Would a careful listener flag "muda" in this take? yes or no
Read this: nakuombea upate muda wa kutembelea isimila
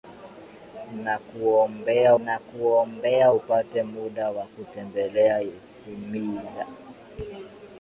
no